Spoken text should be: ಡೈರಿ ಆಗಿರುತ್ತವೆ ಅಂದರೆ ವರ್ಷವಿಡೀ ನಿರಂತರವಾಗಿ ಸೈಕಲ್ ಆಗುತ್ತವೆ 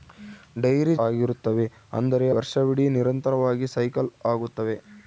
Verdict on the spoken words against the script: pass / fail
pass